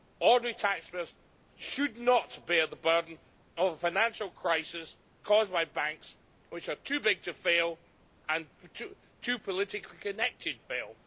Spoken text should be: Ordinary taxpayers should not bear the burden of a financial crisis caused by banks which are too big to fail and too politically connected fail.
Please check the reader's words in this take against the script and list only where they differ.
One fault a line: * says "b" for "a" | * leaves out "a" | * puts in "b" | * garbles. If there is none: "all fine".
all fine